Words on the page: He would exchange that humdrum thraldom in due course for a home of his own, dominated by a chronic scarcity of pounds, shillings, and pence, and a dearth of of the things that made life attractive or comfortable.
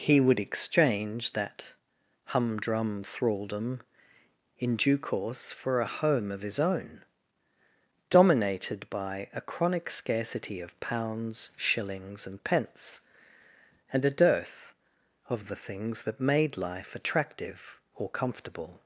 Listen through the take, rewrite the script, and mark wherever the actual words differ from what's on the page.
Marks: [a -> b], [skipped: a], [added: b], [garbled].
He would exchange that humdrum thraldom in due course for a home of his own, dominated by a chronic scarcity of pounds, shillings, and pence, and a dearth of of the things that made life attractive or comfortable.